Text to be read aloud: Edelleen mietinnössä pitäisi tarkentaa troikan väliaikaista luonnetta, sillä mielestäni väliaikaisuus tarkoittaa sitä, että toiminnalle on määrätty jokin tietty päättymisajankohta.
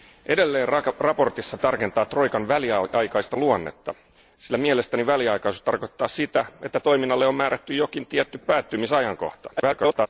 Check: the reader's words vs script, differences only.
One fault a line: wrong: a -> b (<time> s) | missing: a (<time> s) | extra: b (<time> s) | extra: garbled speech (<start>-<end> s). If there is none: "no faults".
missing: pitäisi (1.6 s)
extra: garbled speech (9.6-10.1 s)